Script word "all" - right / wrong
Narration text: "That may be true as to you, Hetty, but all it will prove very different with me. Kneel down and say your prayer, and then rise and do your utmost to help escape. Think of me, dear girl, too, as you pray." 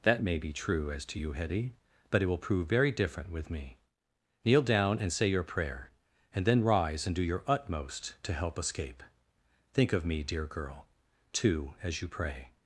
wrong